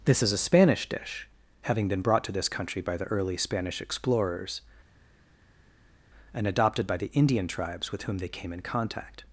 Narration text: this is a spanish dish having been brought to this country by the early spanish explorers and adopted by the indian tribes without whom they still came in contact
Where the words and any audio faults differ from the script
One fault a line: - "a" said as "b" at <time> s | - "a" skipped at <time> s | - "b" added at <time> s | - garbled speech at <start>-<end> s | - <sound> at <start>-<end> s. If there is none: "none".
- "without" said as "with" at 7.9 s
- "still" skipped at 8.3 s